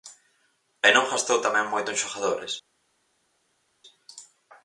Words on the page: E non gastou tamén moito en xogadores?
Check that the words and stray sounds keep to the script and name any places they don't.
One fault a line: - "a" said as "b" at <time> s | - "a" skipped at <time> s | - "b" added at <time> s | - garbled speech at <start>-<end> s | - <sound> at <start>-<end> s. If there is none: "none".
none